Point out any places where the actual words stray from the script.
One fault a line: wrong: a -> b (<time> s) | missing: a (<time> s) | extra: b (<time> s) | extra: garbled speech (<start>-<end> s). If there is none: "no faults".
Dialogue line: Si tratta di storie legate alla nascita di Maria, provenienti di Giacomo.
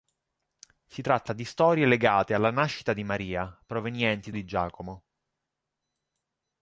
no faults